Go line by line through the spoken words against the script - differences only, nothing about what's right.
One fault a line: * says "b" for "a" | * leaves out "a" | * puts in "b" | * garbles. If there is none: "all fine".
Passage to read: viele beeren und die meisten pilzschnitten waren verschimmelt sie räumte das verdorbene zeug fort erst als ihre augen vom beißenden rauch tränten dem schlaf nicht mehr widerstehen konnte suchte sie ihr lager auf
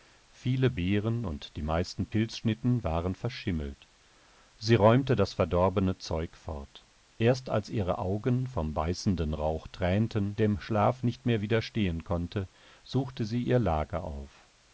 all fine